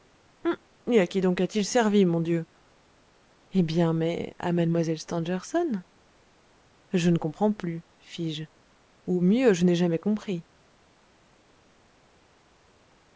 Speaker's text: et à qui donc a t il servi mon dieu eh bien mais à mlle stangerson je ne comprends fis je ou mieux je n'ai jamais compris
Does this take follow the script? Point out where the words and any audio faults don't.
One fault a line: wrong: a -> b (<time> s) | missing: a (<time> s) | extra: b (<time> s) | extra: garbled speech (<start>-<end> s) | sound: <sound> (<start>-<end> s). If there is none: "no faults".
extra: plus (7.5 s)